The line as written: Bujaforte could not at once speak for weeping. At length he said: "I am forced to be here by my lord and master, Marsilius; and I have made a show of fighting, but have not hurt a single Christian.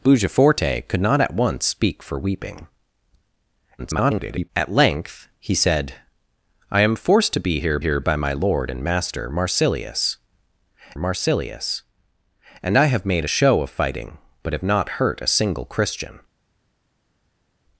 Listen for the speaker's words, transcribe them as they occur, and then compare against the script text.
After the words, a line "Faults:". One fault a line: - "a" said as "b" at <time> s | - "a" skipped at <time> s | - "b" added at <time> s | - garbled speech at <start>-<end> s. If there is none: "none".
Bujaforte could not at once speak for weeping. [garbled] At length he said: "I am forced to be here here by my lord and master, Marsilius Marsilius; and I have made a show of fighting, but have not hurt a single Christian.
Faults:
- garbled speech at 3.8-4.5 s
- "here" added at 7.8 s
- "Marsilius" added at 11.0 s